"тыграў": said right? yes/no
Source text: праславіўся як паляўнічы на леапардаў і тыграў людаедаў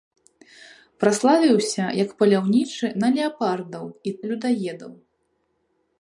no